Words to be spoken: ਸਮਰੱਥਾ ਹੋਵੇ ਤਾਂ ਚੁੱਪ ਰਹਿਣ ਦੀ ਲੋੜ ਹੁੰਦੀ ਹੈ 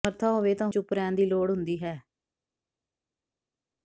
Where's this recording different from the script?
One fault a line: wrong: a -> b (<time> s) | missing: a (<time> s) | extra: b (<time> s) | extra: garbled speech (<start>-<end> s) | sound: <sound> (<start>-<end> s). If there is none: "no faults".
no faults